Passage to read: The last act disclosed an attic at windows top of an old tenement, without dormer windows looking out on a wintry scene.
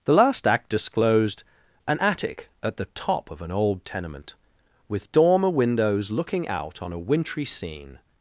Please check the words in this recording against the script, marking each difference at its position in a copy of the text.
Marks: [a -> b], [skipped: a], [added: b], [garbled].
The last act disclosed an attic at [windows -> the] top of an old tenement, [without -> with] dormer windows looking out on a wintry scene.